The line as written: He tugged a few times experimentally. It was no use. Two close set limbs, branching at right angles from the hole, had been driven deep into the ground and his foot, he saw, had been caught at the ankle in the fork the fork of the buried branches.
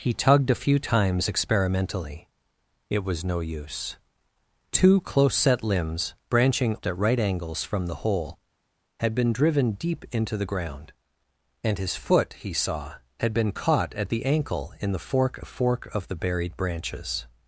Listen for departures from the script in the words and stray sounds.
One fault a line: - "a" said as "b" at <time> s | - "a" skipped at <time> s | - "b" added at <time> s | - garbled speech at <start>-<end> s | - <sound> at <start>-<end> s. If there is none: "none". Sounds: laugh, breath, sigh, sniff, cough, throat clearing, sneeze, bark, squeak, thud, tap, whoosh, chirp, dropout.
none